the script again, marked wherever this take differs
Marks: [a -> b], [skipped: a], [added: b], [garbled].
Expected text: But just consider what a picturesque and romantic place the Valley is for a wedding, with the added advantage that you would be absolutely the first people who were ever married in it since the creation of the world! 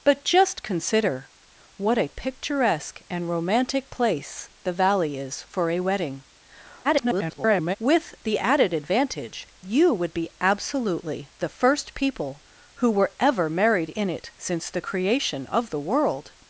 But just consider what a picturesque and romantic place the Valley is for a wedding, [garbled] with the added advantage [skipped: that] you would be absolutely the first people who were ever married in it since the creation of the world!